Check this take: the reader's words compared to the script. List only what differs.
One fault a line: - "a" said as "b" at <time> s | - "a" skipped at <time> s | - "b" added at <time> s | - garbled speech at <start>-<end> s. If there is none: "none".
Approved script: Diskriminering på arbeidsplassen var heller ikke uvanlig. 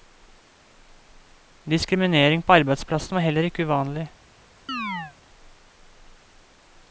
none